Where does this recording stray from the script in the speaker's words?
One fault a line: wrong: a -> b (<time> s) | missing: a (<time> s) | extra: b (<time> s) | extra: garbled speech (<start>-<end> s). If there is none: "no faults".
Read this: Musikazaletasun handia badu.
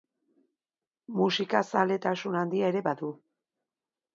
extra: ere (2.8 s)